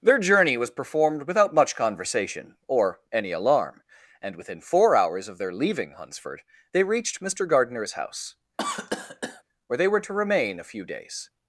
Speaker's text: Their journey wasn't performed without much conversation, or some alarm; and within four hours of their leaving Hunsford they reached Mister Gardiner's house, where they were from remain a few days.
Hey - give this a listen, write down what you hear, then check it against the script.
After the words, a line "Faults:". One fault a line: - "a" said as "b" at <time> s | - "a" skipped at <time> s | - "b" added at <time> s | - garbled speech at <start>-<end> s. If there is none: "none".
Their journey was performed without much conversation, or any alarm; and within four hours of their leaving Hunsford they reached Mister Gardiner's house, where they were to remain a few days.
Faults:
- "wasn't" said as "was" at 0.6 s
- "some" said as "any" at 3.1 s
- "from" said as "to" at 10.0 s